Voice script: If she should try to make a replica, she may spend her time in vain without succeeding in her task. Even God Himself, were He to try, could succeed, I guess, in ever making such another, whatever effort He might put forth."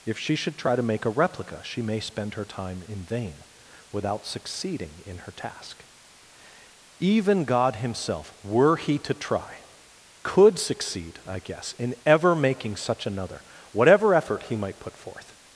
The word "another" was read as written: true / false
true